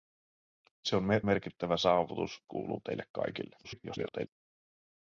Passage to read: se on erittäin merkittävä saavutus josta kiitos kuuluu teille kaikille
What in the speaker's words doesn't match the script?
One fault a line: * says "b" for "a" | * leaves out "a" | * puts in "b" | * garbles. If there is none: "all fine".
* leaves out "erittäin"
* leaves out "josta kiitos"
* garbles